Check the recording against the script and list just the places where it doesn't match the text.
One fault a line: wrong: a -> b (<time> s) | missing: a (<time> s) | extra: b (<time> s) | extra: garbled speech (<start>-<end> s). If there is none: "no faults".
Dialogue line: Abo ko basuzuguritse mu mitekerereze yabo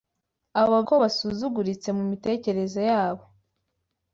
no faults